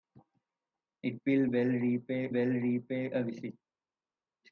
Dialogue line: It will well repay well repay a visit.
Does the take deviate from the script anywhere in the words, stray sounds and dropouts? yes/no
no